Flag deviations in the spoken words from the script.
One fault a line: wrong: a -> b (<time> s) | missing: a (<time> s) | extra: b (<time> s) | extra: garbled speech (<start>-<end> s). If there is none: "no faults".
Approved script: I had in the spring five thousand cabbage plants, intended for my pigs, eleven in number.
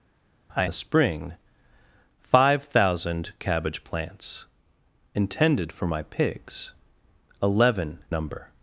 missing: had in (0.6 s)
missing: in (8.0 s)